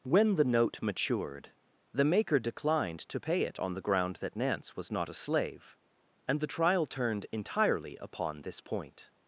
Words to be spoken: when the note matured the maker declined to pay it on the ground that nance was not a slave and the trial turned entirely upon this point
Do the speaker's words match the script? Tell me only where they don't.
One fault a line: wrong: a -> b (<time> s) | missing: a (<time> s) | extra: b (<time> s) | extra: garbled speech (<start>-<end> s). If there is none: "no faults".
no faults